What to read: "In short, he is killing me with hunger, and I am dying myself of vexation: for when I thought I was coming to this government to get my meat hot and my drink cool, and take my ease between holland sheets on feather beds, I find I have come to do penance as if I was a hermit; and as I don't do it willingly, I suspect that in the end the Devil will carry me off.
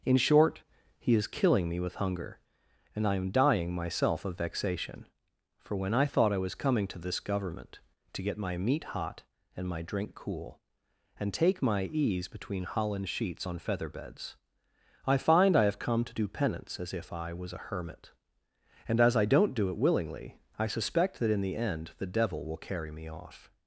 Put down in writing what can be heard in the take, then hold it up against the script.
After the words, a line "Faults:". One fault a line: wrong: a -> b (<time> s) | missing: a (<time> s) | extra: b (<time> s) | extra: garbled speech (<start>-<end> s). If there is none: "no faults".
"In short, he is killing me with hunger, and I am dying myself of vexation: for when I thought I was coming to this government to get my meat hot and my drink cool, and take my ease between holland sheets on feather beds, I find I have come to do penance as if I was a hermit; and as I don't do it willingly, I suspect that in the end the Devil will carry me off.
Faults:
no faults